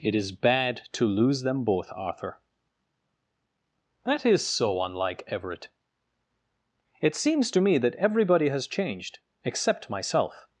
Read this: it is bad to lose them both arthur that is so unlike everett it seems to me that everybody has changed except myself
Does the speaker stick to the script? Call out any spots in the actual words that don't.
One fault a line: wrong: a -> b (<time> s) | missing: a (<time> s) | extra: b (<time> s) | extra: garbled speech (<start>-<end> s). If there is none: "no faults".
no faults